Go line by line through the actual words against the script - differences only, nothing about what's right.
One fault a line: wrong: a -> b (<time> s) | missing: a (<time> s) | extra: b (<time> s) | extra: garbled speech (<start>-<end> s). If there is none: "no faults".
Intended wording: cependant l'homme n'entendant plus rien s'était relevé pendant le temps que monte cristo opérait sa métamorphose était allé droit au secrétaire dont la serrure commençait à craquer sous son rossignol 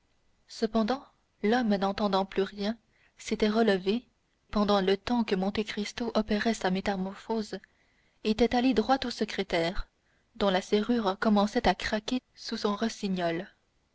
no faults